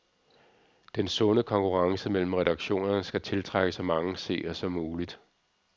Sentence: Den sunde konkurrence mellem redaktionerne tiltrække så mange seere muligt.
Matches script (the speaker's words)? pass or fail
fail